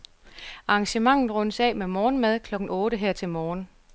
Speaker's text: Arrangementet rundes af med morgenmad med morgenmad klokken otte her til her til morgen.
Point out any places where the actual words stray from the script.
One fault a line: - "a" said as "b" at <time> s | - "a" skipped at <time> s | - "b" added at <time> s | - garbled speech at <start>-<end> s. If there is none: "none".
- "med morgenmad" skipped at 2.4 s
- "her til" skipped at 3.3 s